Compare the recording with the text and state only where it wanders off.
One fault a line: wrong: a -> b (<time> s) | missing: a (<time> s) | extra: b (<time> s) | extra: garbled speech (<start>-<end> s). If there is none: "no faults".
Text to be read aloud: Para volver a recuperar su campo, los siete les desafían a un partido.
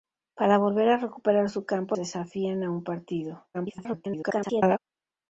missing: los siete les (1.9 s)
extra: garbled speech (3.5-4.8 s)